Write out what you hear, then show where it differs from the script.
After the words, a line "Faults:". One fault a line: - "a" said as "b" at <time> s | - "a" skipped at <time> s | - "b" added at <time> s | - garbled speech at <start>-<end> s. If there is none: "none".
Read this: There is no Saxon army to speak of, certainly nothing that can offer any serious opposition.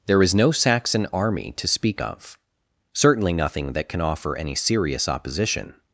There is no Saxon army to speak of, certainly nothing that can offer any serious opposition.
Faults:
none